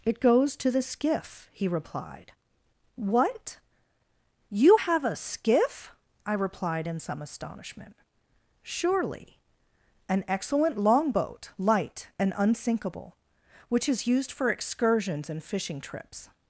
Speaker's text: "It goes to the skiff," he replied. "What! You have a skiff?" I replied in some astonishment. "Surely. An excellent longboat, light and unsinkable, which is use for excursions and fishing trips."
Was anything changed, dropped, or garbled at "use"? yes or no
yes